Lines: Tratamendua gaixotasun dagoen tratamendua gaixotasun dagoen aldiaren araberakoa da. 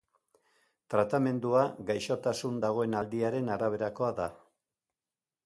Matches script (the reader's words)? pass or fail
fail